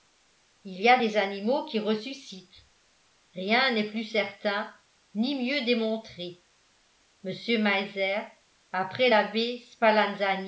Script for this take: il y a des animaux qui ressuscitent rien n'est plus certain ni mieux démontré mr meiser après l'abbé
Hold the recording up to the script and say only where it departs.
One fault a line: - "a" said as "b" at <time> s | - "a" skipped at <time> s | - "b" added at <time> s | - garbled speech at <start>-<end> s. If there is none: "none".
none